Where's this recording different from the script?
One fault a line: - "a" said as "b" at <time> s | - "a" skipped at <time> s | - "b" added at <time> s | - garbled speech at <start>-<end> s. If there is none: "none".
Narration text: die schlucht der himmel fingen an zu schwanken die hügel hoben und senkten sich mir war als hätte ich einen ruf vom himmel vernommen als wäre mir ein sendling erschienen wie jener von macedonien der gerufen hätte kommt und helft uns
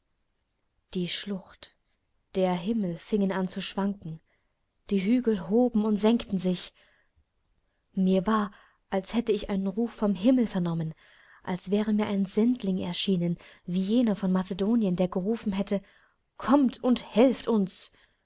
none